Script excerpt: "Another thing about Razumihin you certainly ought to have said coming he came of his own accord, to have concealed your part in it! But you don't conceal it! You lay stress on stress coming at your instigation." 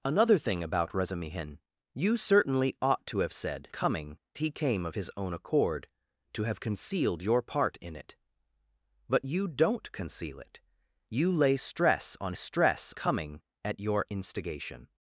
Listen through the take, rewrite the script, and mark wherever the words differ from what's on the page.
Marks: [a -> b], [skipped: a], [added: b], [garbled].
"Another thing about Razumihin you certainly ought to have said coming he came of his own accord, to have concealed your part in it! But you don't conceal it! You lay stress on stress coming at your instigation."